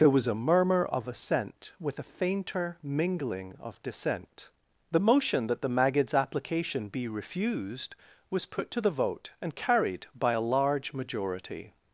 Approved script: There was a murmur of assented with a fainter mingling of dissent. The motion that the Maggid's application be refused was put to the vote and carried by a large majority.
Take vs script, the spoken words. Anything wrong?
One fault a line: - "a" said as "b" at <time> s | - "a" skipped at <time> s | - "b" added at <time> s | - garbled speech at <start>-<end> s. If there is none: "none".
- "assented" said as "assent" at 1.1 s